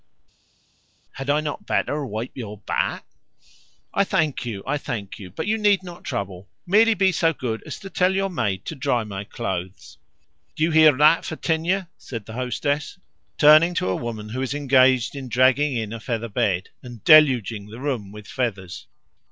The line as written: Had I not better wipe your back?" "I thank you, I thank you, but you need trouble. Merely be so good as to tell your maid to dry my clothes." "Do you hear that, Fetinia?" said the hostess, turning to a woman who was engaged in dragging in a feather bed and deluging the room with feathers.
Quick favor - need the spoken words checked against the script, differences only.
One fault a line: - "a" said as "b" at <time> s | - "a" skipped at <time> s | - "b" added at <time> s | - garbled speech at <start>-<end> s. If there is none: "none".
- "not" added at 5.8 s